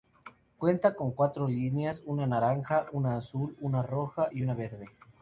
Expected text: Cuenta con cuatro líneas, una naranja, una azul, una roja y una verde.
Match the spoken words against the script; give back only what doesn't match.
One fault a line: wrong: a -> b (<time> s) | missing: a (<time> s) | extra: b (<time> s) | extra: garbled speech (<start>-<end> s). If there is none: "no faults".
no faults